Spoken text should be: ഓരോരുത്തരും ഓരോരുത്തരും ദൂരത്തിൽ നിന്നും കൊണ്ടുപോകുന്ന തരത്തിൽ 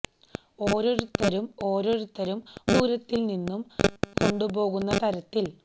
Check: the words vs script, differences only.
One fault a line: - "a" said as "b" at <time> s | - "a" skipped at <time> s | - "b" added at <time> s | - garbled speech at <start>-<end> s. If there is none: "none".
none